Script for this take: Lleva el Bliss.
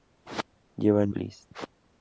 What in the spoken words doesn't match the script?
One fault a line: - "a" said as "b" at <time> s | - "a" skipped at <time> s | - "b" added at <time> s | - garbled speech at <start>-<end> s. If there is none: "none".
none